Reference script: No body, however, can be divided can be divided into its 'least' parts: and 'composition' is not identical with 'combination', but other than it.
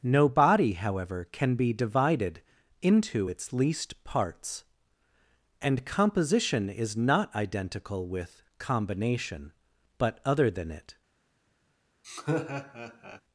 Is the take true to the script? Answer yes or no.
no